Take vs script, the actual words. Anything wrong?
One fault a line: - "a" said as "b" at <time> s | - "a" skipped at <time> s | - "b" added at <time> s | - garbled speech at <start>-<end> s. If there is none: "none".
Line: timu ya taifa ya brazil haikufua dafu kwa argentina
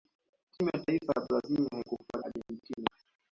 - "dafu kwa" skipped at 2.2 s